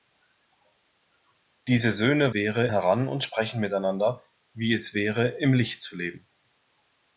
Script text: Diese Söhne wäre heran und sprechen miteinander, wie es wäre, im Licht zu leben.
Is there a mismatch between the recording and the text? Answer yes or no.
no